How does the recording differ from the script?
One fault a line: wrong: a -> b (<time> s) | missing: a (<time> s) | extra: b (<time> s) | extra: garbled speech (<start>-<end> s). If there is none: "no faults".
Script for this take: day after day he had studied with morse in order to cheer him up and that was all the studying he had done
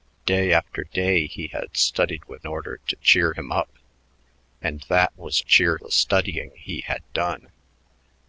missing: morse in (2.5 s)
wrong: all -> cheer (5.4 s)